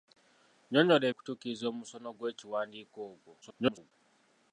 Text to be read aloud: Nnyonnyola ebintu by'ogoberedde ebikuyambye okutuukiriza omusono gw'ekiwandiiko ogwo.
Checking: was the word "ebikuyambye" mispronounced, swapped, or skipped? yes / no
yes